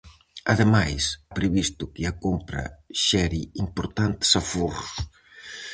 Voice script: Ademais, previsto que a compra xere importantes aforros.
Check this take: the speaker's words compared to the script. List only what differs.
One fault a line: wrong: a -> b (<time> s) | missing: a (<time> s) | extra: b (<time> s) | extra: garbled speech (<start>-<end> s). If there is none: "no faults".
no faults